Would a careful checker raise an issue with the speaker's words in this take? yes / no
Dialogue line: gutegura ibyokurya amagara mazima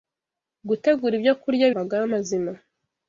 no